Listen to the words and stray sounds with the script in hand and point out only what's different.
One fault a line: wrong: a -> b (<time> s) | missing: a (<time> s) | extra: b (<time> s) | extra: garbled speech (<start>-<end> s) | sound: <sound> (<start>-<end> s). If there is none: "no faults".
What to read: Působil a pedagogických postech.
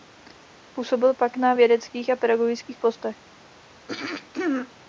extra: pak na vědeckých (1.1 s)
sound: throat clearing (3.9-4.7 s)